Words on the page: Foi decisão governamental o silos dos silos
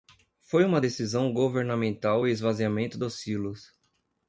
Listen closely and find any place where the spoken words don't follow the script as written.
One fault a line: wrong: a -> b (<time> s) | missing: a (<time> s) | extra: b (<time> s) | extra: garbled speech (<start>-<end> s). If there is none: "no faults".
extra: uma (0.7 s)
wrong: silos -> esvaziamento (2.3 s)